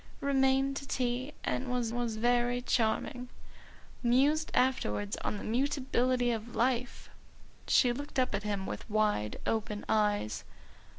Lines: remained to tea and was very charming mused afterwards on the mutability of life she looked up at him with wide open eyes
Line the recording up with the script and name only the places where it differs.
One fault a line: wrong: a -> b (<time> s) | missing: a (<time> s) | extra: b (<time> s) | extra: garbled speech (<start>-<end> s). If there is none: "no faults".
extra: was (1.9 s)